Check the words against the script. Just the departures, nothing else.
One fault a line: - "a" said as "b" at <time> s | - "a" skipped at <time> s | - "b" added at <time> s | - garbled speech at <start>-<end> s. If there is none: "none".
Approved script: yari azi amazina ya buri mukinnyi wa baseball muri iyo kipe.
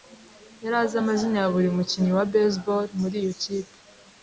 none